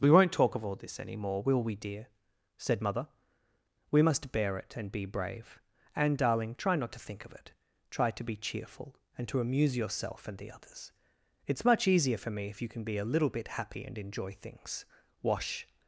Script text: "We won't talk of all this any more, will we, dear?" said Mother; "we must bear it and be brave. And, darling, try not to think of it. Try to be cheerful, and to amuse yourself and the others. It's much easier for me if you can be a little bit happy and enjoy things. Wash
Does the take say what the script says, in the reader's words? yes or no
yes